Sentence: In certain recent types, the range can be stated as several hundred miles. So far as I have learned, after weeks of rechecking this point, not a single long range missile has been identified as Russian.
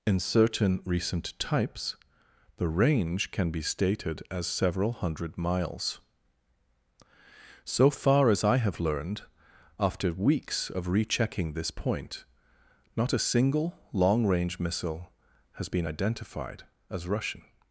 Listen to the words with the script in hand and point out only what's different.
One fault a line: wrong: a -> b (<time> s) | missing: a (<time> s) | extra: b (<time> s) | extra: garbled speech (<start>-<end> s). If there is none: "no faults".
no faults